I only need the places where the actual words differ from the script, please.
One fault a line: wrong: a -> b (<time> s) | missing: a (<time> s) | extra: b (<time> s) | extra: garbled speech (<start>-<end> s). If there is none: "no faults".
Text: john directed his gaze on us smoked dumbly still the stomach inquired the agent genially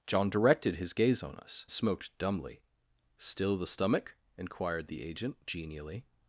no faults